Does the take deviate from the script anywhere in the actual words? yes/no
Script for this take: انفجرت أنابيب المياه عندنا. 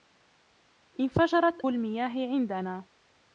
yes